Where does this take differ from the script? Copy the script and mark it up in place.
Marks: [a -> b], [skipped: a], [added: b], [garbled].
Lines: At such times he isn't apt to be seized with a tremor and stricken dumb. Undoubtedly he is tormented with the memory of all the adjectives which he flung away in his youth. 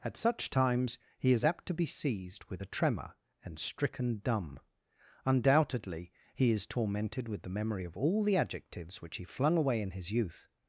At such times he [isn't -> is] apt to be seized with a tremor and stricken dumb. Undoubtedly he is tormented with the memory of all the adjectives which he flung away in his youth.